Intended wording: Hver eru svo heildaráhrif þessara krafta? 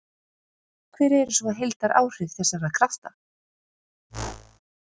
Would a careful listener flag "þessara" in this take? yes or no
no